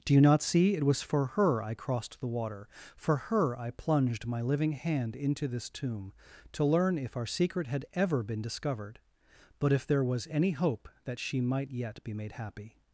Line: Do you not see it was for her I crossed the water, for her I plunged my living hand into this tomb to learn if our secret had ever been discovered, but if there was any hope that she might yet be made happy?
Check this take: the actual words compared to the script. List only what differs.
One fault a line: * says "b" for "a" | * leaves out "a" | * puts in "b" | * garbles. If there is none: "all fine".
all fine